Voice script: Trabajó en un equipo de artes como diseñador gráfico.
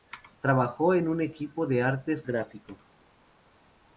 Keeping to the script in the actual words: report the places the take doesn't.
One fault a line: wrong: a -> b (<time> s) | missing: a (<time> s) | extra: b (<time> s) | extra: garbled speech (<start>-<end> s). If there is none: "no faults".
missing: como diseñador (2.2 s)